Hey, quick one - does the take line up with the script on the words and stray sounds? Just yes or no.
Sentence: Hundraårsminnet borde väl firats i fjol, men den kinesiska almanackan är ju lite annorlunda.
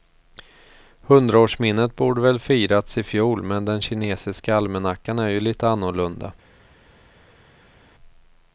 yes